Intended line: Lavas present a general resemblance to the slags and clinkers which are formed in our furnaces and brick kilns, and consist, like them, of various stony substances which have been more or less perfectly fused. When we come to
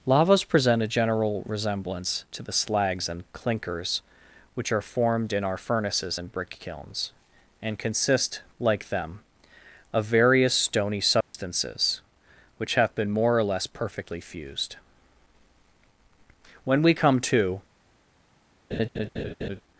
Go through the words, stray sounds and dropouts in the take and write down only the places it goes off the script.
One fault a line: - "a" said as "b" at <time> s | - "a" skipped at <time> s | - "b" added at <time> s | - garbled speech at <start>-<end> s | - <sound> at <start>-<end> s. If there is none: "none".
- dropout at 11.2-11.3 s
- laugh at 18.7-19.6 s